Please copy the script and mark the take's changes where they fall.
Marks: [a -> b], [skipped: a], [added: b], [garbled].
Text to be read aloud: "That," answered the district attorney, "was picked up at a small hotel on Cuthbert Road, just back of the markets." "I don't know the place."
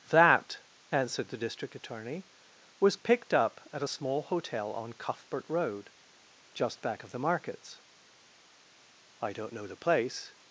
"That," answered the district attorney, "was picked up at a small hotel on Cuthbert Road, just back of the markets." "I don't know the place."